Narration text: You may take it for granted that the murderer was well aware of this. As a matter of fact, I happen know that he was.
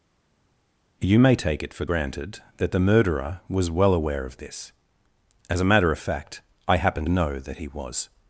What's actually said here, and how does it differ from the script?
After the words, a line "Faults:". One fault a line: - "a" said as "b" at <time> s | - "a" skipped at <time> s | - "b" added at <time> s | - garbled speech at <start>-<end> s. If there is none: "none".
You may take it for granted that the murderer was well aware of this. As a matter of fact, I happen know that he was.
Faults:
none